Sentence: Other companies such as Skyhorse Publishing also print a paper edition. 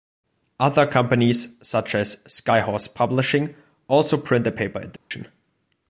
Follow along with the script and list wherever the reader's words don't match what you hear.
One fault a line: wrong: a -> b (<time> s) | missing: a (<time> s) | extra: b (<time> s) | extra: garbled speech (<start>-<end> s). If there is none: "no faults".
no faults